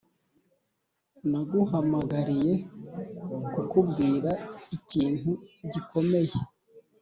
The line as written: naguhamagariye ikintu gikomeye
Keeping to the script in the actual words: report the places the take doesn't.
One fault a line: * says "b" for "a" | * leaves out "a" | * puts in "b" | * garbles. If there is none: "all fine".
* puts in "kukubwira"